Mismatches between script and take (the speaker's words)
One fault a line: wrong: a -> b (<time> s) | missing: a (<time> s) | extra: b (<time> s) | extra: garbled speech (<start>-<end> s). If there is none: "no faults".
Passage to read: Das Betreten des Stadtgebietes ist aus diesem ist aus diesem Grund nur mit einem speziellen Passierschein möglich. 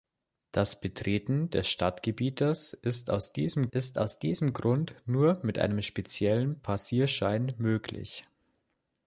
no faults